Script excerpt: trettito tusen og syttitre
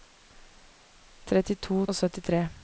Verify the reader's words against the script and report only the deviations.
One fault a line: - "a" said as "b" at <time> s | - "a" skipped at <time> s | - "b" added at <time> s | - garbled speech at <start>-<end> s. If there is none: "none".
- "tusen" skipped at 1.9 s